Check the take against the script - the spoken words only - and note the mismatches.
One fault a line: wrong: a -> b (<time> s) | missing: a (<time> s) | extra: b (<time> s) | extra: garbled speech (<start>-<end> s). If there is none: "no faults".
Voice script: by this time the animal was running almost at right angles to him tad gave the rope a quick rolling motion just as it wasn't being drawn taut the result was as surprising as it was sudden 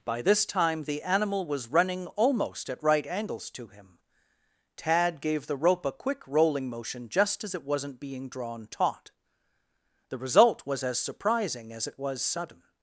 no faults